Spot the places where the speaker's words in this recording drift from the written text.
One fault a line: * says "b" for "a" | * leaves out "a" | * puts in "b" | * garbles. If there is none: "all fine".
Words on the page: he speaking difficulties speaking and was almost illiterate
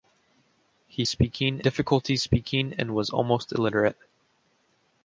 all fine